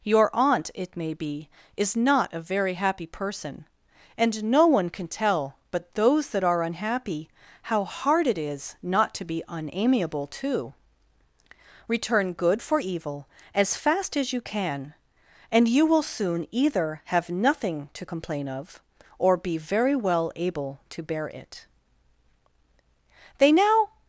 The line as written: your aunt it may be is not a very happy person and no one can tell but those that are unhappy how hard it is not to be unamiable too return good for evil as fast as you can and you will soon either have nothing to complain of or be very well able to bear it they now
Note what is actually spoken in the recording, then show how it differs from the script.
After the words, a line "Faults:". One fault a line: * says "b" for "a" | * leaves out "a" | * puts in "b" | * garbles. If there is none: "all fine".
your aunt it may be is not a very happy person and no one can tell but those that are unhappy how hard it is not to be unamiable too return good for evil as fast as you can and you will soon either have nothing to complain of or be very well able to bear it they now
Faults:
all fine